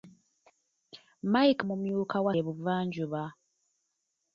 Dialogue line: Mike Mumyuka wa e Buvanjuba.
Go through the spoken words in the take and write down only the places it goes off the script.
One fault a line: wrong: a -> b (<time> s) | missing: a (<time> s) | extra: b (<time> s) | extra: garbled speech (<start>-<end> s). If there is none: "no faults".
no faults